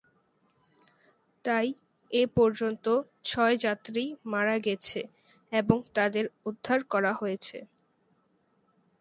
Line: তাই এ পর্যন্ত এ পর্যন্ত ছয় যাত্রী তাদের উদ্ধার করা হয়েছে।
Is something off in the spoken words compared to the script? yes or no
yes